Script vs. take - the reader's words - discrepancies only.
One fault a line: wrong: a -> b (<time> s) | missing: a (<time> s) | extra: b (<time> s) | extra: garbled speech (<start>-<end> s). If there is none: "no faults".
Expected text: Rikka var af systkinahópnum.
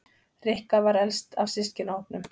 extra: elst (1.0 s)